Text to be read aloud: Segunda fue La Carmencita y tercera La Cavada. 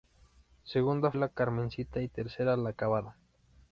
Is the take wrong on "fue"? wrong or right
wrong